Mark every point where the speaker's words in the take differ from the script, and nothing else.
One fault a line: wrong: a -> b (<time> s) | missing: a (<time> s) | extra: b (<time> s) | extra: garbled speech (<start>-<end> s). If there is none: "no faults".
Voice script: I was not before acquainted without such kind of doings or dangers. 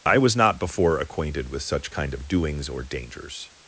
wrong: without -> with (1.5 s)